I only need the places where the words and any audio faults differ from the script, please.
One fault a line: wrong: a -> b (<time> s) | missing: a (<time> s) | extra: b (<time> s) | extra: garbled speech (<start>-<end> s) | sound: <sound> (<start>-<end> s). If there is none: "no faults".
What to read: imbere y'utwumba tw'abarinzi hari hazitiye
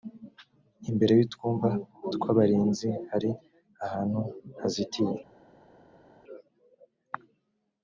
extra: ahantu (3.9 s)